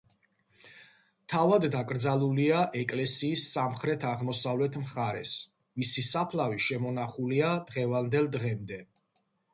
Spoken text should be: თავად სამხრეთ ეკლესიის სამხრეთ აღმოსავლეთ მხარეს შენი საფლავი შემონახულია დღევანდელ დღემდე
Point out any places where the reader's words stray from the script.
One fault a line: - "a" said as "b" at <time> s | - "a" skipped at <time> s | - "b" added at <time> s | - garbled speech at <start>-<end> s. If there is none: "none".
- "სამხრეთ" said as "დაკრძალულია" at 1.8 s
- "შენი" said as "მისი" at 5.8 s